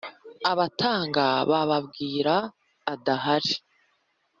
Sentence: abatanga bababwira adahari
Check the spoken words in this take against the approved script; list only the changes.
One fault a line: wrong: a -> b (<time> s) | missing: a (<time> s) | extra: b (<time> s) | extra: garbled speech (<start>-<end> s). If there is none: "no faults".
no faults